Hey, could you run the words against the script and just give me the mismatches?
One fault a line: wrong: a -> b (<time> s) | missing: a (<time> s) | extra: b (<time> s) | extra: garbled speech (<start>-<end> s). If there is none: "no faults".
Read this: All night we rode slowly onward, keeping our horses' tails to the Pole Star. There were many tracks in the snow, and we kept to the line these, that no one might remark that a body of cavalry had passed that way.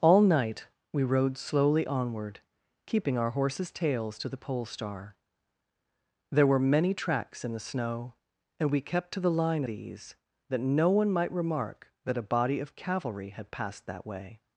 no faults